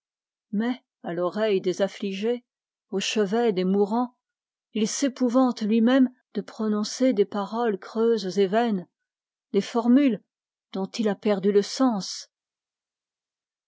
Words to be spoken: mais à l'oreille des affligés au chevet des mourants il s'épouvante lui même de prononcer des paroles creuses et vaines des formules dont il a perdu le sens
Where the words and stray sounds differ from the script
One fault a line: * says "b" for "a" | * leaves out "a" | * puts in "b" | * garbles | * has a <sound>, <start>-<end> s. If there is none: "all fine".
all fine